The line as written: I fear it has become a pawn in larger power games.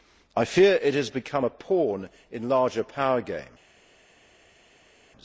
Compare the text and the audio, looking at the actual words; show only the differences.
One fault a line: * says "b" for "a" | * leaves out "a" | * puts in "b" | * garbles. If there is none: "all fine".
all fine